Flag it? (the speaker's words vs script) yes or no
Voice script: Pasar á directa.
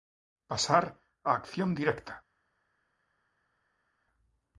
yes